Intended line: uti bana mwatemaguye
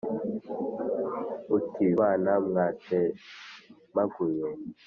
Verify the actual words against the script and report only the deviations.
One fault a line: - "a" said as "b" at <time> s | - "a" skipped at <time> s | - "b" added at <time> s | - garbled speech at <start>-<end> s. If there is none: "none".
none